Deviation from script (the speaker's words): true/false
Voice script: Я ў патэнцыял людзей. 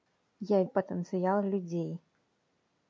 false